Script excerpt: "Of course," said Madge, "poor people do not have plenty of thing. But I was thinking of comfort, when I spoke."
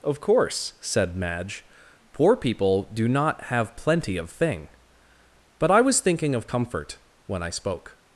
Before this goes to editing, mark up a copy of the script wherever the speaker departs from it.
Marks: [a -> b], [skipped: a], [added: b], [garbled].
"Of course," said Madge, "poor people do not have plenty of thing. But I was thinking of comfort, when I spoke."